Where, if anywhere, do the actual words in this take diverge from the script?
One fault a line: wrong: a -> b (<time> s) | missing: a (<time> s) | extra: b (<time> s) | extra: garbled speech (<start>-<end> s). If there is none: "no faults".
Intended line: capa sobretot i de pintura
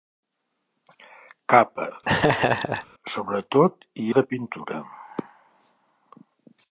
no faults